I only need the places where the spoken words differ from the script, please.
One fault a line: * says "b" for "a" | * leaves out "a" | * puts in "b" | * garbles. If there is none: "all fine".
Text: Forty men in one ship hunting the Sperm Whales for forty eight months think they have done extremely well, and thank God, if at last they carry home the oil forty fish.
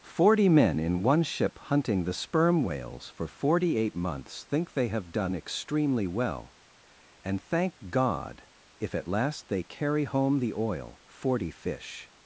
all fine